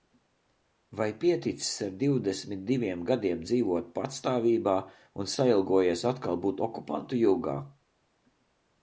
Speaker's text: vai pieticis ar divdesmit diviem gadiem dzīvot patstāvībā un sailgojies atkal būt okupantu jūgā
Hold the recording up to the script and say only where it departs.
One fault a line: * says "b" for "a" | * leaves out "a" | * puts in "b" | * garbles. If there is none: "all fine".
all fine